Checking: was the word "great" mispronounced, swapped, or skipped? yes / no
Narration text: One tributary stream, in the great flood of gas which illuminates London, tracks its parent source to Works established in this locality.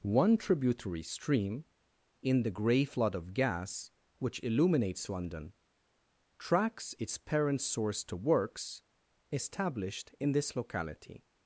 yes